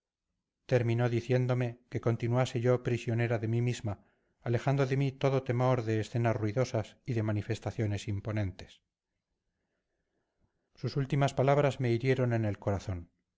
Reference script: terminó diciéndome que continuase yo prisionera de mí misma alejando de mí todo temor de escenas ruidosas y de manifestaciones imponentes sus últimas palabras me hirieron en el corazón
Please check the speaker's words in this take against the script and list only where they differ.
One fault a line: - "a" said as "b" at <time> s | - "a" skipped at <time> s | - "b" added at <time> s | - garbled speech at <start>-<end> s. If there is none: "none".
none